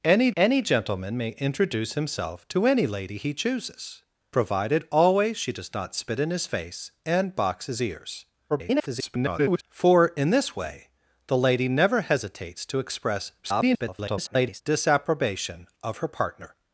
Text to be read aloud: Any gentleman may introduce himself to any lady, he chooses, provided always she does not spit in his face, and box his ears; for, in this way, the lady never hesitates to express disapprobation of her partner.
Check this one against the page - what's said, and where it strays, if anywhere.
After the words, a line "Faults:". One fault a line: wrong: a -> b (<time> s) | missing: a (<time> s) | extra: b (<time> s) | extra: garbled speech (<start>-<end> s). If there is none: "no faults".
Any any gentleman may introduce himself to any lady, he chooses, provided always she does not spit in his face, and box his ears; [garbled] for, in this way, the lady never hesitates to express [garbled] disapprobation of her partner.
Faults:
extra: any (0.4 s)
extra: garbled speech (8.5-9.6 s)
extra: garbled speech (13.4-14.6 s)